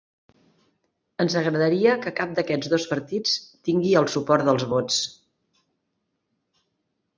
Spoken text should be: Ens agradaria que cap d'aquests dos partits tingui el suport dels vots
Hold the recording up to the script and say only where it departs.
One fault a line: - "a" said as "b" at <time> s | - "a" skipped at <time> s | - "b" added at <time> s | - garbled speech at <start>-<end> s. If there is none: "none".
none